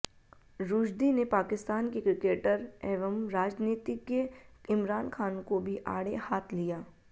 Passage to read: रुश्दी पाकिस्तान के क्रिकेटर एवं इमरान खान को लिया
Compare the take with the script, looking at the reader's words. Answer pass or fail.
fail